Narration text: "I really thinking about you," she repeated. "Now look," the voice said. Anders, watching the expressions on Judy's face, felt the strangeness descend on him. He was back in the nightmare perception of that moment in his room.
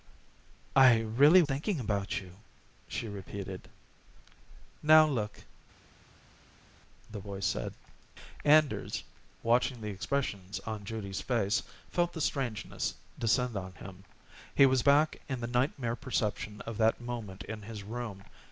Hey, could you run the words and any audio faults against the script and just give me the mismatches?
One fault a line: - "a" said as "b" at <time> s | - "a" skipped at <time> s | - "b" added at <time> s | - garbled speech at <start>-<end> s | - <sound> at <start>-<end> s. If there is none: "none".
none